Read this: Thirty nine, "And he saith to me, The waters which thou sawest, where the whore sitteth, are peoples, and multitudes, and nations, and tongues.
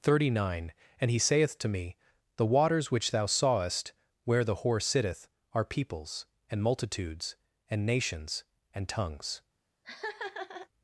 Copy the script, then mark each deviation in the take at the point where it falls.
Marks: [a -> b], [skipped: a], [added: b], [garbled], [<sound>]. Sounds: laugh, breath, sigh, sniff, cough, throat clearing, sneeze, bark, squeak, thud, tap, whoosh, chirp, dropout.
Thirty nine, "And he saith to me, The waters which thou sawest, where the whore sitteth, are peoples, and multitudes, and nations, and tongues. [laugh]